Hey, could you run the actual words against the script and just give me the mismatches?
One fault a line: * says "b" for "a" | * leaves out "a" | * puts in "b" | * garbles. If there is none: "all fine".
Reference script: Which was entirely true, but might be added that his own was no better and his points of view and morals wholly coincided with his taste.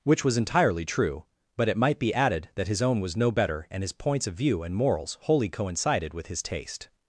* puts in "it"